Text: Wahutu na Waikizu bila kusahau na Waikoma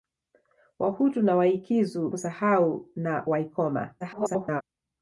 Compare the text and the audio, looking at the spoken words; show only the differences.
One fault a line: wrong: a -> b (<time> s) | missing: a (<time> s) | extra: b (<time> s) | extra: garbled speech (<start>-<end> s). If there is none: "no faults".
missing: bila (2.1 s)
extra: garbled speech (4.0-4.6 s)